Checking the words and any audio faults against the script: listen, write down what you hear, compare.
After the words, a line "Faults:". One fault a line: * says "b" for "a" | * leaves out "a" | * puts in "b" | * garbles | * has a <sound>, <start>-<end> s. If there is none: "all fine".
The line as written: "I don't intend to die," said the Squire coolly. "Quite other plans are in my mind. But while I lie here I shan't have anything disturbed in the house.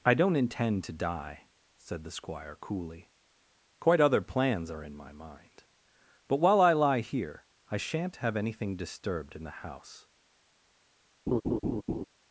"I don't intend to die," said the Squire coolly. "Quite other plans are in my mind. But while I lie here I shan't have anything disturbed in the house.
Faults:
* has a laugh, 11.3-12.1 s